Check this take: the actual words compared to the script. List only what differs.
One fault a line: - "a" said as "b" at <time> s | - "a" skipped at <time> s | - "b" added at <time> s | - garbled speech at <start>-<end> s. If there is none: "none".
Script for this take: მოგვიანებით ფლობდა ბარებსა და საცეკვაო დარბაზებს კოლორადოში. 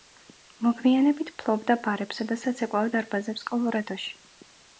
none